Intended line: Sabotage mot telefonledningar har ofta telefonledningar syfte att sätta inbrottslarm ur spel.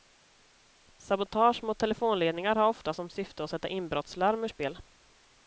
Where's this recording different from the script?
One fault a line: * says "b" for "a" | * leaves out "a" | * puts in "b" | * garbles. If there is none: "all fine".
* says "som" for "telefonledningar"